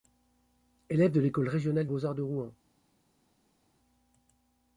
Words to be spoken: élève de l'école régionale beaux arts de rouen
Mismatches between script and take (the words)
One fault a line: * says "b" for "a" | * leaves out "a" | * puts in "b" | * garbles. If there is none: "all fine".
all fine